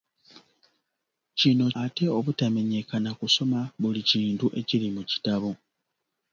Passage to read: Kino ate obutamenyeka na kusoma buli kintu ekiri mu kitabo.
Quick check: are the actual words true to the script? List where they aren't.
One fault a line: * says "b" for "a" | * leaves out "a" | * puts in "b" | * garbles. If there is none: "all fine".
all fine